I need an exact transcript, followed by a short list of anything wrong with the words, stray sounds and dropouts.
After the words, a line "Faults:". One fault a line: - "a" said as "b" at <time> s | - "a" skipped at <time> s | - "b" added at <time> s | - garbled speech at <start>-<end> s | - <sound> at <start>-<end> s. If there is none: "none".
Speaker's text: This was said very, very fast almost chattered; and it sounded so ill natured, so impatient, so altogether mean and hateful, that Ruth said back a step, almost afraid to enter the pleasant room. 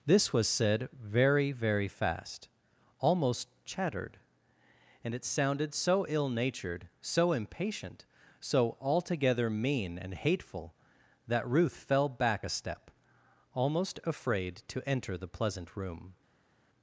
This was said very, very fast almost chattered; and it sounded so ill natured, so impatient, so altogether mean and hateful, that Ruth fell back a step, almost afraid to enter the pleasant room.
Faults:
- "said" said as "fell" at 11.8 s